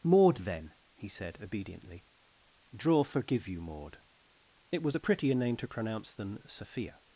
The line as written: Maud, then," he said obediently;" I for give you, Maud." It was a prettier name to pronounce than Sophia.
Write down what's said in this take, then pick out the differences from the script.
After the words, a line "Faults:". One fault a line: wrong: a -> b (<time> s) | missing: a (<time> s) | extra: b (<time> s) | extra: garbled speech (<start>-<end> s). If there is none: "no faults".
Maud, then," he said obediently;" draw forgive you, Maud." It was a prettier name to pronounce than Sophia.
Faults:
wrong: I for give -> draw forgive (2.8 s)